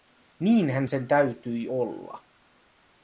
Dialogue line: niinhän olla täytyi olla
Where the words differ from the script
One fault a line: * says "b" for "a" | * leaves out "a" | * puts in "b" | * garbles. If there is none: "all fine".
* says "sen" for "olla"